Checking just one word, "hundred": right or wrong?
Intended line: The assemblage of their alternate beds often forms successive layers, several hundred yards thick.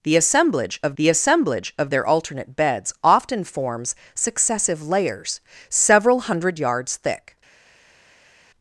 right